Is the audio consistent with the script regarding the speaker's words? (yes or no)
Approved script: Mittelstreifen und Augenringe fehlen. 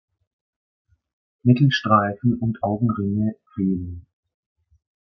yes